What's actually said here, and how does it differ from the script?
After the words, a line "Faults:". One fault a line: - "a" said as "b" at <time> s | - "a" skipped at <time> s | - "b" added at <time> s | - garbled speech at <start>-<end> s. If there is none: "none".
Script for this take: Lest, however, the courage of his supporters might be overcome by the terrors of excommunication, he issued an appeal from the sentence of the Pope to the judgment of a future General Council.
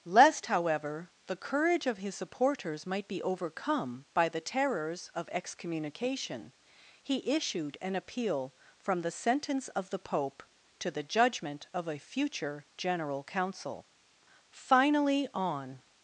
Lest, however, the courage of his supporters might be overcome by the terrors of excommunication, he issued an appeal from the sentence of the Pope to the judgment of a future General Council. Finally, on
Faults:
- "Finally on" added at 14.5 s